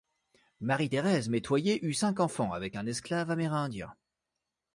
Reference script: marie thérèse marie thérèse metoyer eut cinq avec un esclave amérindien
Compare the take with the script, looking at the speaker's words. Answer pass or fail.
fail